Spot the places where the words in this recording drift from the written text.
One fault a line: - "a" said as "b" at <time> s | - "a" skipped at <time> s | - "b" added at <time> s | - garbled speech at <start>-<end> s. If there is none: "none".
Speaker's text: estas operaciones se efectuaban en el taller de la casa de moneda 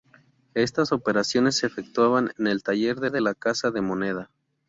- "de" added at 3.1 s